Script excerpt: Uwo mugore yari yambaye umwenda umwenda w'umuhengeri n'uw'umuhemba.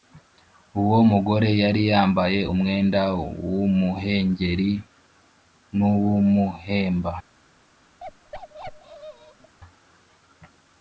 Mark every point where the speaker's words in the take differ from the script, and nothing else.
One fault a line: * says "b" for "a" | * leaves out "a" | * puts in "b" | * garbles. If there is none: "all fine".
* leaves out "umwenda"